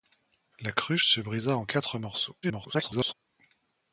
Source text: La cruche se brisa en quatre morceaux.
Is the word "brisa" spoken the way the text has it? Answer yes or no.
yes